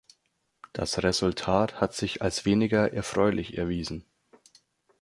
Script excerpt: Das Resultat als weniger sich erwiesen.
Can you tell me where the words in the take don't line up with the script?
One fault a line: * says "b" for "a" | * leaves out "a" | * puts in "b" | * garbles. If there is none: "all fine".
* puts in "hat sich"
* says "erfreulich" for "sich"